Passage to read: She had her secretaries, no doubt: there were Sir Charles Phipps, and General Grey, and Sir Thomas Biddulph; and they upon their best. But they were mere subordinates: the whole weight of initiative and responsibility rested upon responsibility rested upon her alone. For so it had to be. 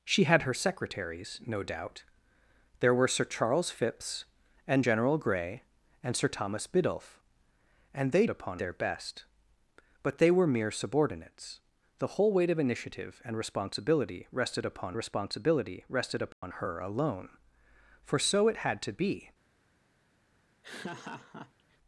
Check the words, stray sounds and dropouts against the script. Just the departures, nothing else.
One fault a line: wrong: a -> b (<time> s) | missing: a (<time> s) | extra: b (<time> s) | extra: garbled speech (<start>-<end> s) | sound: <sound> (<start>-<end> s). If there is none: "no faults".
sound: dropout (16.3-16.4 s)
sound: laugh (20.6-21.8 s)